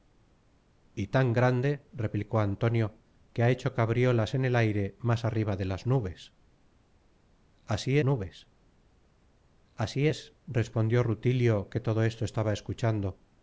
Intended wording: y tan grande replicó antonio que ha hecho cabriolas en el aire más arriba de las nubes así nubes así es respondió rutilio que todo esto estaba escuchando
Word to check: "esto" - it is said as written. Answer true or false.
true